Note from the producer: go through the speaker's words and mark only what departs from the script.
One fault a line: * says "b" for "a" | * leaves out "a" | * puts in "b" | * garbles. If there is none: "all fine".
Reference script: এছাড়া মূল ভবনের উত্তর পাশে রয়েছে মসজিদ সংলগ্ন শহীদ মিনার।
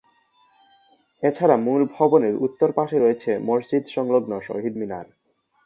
all fine